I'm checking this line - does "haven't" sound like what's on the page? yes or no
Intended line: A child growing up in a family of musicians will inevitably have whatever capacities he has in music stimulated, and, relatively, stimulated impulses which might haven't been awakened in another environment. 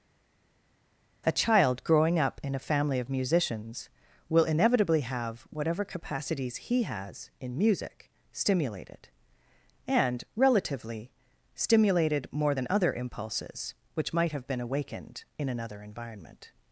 no